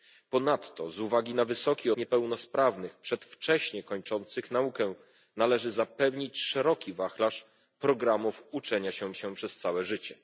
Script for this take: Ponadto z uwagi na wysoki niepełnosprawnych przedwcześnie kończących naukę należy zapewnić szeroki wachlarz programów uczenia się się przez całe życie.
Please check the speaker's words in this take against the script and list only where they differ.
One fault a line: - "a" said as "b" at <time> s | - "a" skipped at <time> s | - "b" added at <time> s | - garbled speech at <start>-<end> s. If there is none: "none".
none